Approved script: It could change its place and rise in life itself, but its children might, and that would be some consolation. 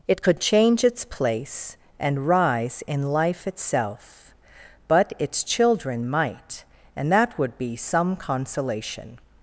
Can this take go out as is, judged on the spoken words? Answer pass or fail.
pass